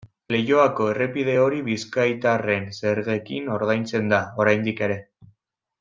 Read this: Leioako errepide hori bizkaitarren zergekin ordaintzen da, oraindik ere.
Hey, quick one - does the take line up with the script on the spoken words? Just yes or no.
yes